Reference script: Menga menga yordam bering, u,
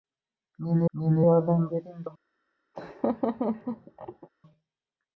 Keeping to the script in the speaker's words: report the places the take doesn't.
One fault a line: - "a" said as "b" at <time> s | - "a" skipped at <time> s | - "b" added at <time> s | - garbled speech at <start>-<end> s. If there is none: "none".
none